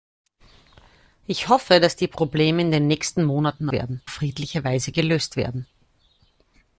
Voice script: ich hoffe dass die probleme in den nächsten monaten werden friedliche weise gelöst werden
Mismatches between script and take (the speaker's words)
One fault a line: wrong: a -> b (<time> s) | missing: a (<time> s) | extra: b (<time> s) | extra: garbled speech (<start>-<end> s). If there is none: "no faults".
no faults